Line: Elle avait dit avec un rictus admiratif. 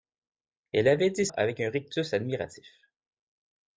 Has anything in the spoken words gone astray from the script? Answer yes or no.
no